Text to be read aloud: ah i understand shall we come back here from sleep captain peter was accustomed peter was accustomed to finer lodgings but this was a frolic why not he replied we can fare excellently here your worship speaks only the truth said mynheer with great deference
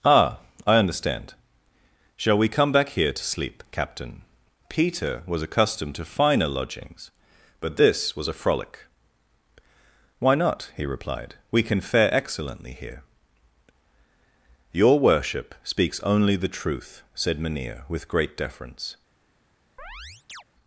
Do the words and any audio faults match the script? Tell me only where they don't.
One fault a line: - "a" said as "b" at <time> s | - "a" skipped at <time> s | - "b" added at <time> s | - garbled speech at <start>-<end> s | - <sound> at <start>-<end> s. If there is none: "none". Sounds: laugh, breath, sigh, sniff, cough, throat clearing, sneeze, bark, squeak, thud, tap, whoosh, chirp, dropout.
- "from" said as "to" at 3.1 s
- "peter was accustomed" skipped at 5.9 s
- chirp at 19.8-20.4 s